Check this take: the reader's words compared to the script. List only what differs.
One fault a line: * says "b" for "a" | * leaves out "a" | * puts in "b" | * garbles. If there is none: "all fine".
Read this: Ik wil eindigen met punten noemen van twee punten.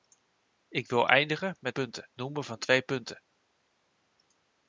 all fine